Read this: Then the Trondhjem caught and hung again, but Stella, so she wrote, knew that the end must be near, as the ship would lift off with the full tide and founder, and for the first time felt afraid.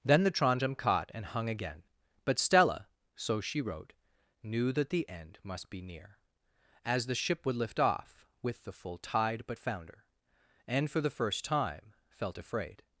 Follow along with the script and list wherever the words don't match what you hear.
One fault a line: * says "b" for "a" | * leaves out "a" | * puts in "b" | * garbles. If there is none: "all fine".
* says "but" for "and"